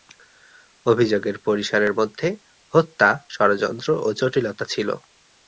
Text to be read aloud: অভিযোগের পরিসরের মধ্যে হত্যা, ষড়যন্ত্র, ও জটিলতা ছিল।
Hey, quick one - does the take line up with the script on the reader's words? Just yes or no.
yes